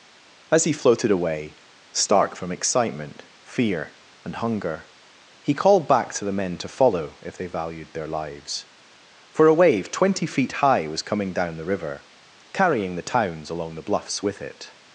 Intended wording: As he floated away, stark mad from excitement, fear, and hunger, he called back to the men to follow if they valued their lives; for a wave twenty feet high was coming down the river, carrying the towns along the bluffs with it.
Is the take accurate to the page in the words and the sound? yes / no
no